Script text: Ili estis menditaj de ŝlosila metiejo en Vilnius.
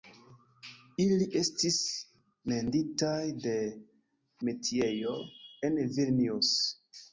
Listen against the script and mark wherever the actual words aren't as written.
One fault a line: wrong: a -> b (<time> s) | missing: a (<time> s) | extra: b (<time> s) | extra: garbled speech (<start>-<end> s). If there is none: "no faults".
missing: ŝlosila (3.5 s)